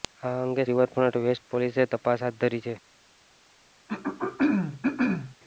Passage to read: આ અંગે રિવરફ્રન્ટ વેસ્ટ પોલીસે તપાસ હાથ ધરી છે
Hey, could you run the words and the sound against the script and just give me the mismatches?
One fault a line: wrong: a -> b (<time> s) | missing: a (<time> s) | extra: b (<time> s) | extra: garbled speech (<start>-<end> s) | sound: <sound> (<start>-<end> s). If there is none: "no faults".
sound: throat clearing (3.9-5.4 s)